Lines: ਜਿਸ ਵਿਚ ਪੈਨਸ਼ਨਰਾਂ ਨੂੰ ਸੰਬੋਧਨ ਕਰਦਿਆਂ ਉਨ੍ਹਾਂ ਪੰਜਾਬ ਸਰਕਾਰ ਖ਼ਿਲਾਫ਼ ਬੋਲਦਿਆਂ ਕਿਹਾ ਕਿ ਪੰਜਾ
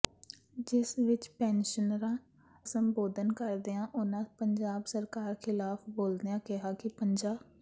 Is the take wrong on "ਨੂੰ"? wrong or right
wrong